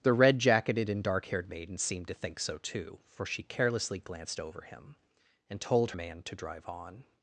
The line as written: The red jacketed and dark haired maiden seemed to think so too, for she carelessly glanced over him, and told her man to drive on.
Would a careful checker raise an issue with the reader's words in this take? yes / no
yes